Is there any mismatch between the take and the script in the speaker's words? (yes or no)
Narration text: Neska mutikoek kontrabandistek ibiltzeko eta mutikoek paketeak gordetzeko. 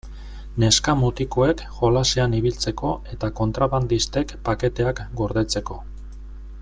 yes